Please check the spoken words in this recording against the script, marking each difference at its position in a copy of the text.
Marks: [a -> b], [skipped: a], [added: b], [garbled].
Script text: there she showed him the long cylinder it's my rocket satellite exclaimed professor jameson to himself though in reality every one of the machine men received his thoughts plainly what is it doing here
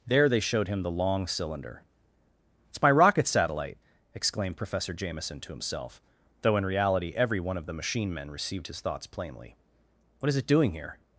there [she -> they] showed him the long cylinder it's my rocket satellite exclaimed professor jameson to himself though in reality every one of the machine men received his thoughts plainly what is it doing here